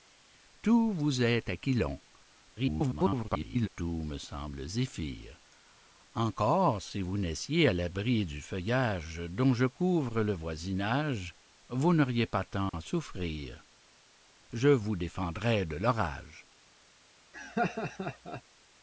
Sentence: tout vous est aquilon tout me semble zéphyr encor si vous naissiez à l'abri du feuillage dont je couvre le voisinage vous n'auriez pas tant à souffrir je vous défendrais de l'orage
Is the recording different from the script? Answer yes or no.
yes